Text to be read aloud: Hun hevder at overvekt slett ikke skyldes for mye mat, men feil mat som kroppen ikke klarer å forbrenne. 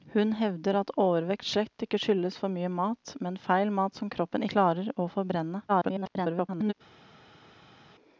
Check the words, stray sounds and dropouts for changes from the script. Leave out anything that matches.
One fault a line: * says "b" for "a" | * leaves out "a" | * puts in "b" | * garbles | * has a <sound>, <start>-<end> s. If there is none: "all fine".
* leaves out "ikke"
* garbles